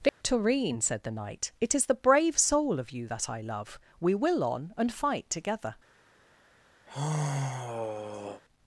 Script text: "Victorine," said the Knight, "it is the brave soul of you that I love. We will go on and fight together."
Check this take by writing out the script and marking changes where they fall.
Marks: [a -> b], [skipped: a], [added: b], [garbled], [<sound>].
"Victorine," [dropout] said the Knight, "it is the brave soul of you that I love. We will [skipped: go] on and fight together." [sigh]